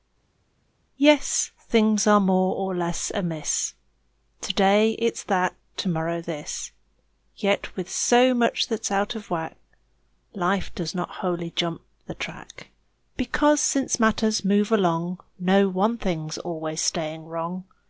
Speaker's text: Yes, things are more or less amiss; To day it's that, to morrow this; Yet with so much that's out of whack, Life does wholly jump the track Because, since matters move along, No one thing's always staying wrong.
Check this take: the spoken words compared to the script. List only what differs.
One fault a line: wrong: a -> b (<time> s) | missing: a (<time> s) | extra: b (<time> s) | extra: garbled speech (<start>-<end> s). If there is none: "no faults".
extra: not (10.9 s)